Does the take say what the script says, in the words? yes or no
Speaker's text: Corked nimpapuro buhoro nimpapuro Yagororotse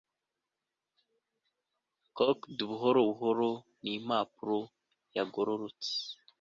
no